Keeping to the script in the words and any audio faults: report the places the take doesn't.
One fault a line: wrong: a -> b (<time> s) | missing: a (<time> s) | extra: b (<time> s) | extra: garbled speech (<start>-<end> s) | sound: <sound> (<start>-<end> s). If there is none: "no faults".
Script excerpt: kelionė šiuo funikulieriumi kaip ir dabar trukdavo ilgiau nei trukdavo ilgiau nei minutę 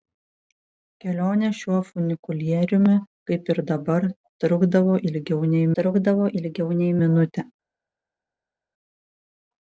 no faults